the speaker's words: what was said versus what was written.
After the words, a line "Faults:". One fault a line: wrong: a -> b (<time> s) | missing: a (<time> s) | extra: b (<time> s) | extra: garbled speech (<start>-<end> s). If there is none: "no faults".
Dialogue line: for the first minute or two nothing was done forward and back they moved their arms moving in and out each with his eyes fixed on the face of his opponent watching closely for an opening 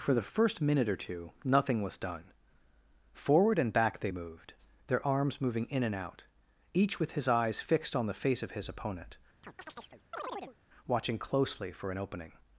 for the first minute or two nothing was done forward and back they moved their arms moving in and out each with his eyes fixed on the face of his opponent watching closely for an opening
Faults:
no faults